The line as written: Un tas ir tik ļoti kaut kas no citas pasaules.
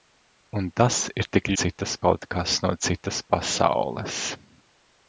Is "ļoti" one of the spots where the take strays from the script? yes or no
yes